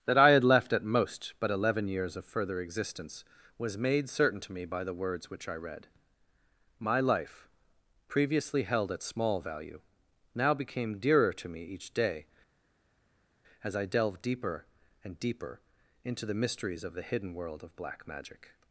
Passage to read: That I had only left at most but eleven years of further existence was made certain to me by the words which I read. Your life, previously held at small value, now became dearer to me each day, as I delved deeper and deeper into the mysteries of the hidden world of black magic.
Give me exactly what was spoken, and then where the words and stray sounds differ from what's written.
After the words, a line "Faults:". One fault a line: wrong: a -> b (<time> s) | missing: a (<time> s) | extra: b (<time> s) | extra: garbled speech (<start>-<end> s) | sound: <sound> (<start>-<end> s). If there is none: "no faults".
That I had left at most but eleven years of further existence was made certain to me by the words which I read. My life, previously held at small value, now became dearer to me each day, as I delved deeper and deeper into the mysteries of the hidden world of black magic.
Faults:
missing: only (0.4 s)
wrong: Your -> My (6.8 s)